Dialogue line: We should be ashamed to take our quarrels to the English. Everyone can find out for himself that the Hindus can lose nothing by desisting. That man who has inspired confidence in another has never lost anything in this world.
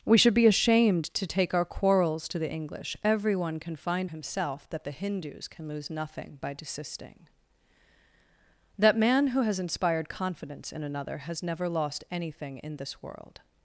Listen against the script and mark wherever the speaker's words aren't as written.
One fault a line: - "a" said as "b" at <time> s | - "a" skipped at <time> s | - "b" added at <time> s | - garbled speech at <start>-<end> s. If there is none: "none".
- "out for" skipped at 4.1 s